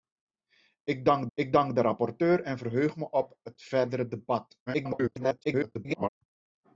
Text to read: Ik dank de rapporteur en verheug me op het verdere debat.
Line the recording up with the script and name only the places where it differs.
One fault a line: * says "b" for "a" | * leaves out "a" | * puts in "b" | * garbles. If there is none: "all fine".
* puts in "ik dank"
* garbles